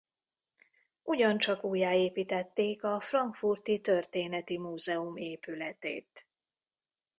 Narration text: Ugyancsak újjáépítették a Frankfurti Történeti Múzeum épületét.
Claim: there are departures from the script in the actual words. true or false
false